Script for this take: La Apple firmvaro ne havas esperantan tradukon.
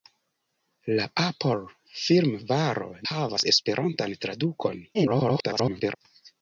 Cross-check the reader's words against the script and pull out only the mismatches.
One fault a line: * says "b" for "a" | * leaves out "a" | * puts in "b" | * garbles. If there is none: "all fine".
* leaves out "ne"
* garbles